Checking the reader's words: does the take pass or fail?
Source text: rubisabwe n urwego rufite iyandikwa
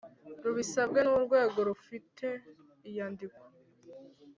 pass